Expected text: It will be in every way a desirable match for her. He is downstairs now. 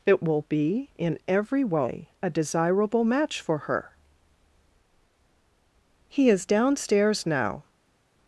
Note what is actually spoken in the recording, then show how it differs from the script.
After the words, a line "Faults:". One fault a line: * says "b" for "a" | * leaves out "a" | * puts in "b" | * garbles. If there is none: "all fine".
It will be in every way a desirable match for her. He is downstairs now.
Faults:
all fine